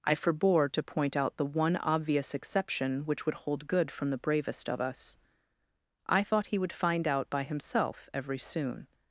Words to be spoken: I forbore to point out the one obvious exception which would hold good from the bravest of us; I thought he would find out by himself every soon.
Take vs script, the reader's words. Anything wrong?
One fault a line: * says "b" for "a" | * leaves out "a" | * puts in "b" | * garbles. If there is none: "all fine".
all fine